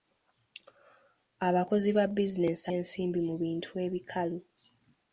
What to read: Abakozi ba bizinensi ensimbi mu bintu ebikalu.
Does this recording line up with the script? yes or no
yes